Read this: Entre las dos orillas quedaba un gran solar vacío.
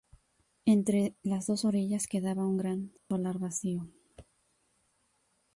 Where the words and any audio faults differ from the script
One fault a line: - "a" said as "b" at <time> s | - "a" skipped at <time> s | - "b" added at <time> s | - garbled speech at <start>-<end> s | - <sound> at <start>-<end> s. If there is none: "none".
- dropout at 3.0-3.1 s